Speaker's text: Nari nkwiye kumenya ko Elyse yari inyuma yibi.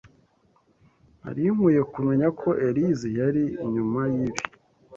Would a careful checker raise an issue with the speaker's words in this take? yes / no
no